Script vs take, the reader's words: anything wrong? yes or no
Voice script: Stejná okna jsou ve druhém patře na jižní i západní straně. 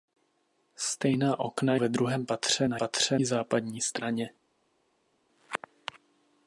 yes